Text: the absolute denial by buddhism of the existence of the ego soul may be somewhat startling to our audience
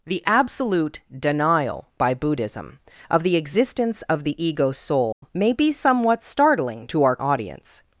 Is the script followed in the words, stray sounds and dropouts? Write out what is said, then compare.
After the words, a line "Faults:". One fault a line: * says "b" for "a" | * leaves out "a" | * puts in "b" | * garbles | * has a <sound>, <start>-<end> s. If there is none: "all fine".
the absolute denial by buddhism of the existence of the ego soul may be somewhat startling to our audience
Faults:
* has a dropout, 5.1-5.2 s